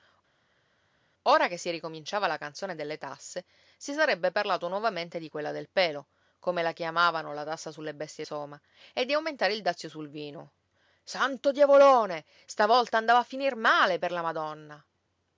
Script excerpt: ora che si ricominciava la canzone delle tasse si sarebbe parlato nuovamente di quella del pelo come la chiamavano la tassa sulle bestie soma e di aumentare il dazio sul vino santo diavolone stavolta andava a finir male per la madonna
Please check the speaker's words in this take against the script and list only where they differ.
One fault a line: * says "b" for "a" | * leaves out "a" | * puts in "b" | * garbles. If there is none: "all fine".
all fine